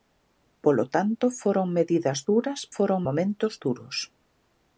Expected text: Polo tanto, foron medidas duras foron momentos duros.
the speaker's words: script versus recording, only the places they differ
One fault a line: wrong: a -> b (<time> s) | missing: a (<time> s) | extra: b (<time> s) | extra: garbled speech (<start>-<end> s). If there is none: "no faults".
no faults